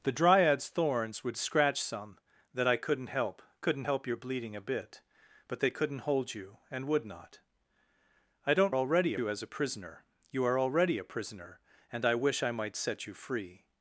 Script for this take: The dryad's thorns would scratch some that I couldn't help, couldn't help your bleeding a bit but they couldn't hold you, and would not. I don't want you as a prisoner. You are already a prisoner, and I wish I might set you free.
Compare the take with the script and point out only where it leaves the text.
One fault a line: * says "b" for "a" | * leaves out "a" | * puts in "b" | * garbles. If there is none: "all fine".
* says "already" for "want"